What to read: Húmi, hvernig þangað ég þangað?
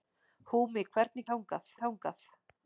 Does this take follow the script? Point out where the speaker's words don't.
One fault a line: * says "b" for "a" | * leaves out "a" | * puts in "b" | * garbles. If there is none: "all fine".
all fine